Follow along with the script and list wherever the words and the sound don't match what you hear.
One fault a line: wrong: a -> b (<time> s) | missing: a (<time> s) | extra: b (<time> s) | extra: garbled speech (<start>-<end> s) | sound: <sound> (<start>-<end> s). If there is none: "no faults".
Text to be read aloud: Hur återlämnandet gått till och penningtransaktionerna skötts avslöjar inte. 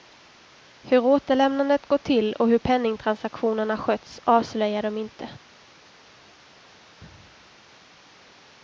extra: hur (2.5 s)
extra: de (4.8 s)